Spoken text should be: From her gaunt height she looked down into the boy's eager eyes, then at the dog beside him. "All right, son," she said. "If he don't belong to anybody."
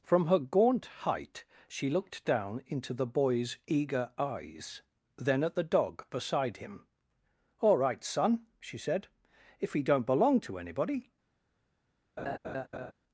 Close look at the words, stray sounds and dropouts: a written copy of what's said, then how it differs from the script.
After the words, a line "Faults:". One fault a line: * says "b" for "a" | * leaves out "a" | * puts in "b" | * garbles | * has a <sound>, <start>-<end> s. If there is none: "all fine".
From her gaunt height she looked down into the boy's eager eyes, then at the dog beside him. "All right, son," she said. "If he don't belong to anybody."
Faults:
* has a laugh, 12.2-12.9 s